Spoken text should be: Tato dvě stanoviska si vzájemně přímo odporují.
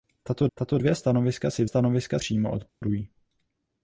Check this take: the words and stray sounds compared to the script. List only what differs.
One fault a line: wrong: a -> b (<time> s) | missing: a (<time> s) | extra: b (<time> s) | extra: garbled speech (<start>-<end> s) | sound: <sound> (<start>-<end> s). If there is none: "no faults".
extra: tato (0.5 s)
wrong: vzájemně -> stanoviska (1.6 s)
sound: dropout (2.7-2.8 s)